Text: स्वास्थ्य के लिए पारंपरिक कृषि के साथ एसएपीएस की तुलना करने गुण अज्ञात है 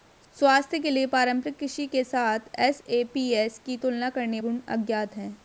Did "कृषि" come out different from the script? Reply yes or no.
no